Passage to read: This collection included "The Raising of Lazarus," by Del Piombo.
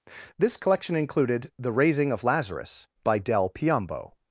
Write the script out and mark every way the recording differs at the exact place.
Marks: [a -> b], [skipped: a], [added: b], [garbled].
This collection included "The Raising of Lazarus," by Del Piombo.